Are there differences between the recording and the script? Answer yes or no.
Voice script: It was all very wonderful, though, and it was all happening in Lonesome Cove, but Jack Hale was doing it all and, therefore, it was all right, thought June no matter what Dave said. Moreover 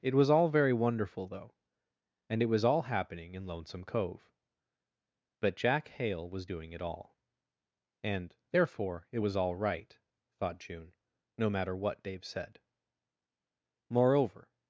no